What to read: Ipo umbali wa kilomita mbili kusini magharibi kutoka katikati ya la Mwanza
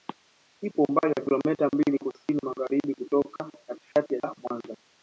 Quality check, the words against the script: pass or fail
pass